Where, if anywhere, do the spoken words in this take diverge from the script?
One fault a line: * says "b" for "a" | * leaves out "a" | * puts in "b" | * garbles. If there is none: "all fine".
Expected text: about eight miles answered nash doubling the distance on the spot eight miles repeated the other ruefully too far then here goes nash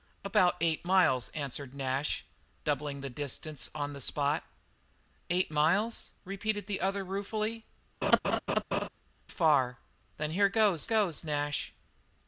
* leaves out "too"
* puts in "goes"